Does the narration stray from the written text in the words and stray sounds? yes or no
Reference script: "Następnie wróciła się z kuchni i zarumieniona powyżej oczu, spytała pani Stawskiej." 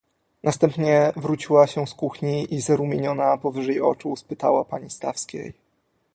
no